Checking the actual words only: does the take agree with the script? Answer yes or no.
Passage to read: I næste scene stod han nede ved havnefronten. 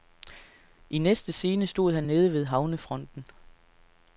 yes